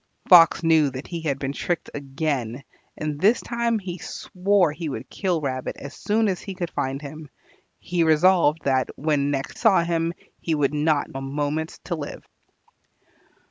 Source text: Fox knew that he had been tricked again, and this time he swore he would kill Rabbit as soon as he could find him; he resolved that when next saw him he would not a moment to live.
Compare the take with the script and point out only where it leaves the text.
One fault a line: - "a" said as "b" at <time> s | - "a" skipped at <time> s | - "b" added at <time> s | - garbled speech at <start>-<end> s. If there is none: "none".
none